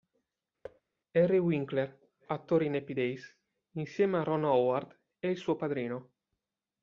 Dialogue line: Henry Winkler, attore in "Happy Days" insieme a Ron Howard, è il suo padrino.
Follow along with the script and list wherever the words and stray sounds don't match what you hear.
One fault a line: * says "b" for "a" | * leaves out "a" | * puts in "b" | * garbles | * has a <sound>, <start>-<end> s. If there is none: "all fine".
* has a thud, 0.6-0.8 s